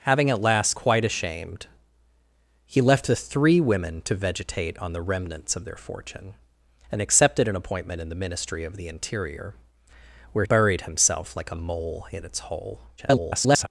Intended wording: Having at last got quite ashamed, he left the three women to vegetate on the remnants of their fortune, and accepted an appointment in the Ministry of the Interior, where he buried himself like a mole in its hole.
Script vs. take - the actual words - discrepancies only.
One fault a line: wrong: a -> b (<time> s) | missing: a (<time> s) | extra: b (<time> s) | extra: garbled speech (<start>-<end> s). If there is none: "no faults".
missing: got (0.8 s)
missing: he (10.4 s)
extra: garbled speech (13.0-13.7 s)